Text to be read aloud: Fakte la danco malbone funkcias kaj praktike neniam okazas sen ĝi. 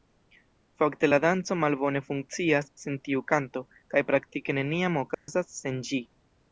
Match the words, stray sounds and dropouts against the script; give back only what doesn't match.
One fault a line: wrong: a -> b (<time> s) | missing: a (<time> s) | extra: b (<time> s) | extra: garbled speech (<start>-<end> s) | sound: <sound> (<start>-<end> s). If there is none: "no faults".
extra: sen tiu kanto (2.9 s)
sound: dropout (5.1-5.3 s)